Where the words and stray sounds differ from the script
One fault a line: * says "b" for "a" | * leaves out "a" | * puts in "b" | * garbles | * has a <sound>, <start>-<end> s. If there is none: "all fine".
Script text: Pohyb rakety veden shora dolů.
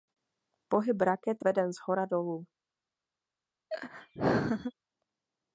* has a laugh, 3.7-4.7 s